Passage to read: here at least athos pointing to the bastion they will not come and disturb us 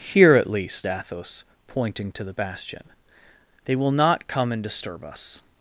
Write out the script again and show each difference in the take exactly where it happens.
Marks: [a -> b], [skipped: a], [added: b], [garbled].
here at least athos pointing to the bastion they will not come and disturb us